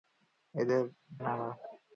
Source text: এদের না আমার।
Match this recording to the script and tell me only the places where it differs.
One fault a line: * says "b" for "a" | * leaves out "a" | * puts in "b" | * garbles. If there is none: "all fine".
all fine